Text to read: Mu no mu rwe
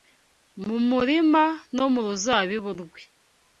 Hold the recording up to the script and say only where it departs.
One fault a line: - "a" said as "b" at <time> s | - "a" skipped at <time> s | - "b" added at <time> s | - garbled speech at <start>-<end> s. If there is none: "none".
- "murima" added at 0.9 s
- "ruzabibu" added at 2.1 s